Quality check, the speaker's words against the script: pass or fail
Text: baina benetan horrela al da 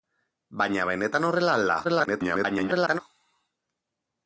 fail